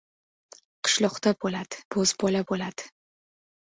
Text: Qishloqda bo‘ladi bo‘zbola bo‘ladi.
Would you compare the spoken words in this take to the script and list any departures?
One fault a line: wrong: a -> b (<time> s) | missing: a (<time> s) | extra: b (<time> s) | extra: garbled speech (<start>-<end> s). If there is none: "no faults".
no faults